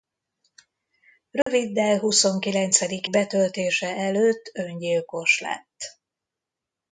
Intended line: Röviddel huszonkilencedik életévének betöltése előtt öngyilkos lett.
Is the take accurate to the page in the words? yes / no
no